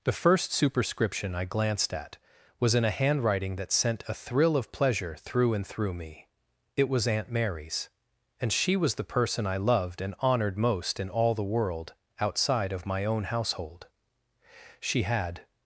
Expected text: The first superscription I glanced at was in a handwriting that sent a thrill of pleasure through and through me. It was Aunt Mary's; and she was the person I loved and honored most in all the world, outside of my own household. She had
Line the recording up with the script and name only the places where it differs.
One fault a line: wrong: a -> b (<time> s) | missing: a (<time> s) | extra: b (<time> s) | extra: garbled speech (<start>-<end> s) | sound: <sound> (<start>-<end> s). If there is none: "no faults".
no faults